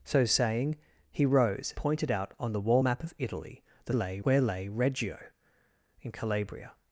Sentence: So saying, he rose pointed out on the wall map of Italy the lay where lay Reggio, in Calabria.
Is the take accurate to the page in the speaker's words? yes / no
yes